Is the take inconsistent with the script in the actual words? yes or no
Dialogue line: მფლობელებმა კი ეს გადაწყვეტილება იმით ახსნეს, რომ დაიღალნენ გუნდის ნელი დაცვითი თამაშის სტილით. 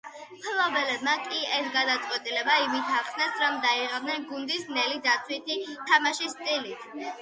no